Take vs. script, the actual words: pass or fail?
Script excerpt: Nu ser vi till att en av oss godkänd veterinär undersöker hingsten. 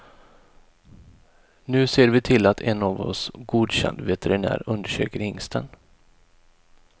pass